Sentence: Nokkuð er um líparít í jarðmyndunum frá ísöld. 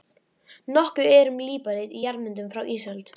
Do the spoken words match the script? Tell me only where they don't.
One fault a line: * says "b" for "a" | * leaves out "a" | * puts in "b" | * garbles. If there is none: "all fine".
all fine